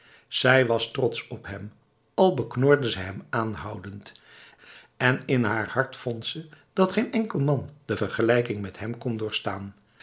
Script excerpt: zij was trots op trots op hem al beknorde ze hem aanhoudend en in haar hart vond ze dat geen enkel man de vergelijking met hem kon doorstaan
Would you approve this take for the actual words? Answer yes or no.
no